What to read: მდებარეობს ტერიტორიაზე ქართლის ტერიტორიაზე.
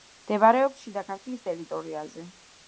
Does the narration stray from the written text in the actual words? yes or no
yes